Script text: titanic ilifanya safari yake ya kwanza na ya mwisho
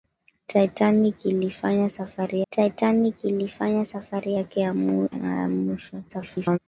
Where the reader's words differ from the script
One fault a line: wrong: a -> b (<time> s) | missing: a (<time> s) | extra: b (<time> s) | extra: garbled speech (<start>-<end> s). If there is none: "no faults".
extra: titanic ilifanya safari (2.5 s)
missing: kwanza (4.7 s)
extra: garbled speech (6.1-6.6 s)